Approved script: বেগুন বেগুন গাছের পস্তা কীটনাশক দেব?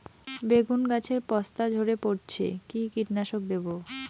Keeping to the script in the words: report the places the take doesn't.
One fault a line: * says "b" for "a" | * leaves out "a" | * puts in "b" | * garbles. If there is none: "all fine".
* leaves out "বেগুন"
* puts in "ঝরে পড়ছে কি"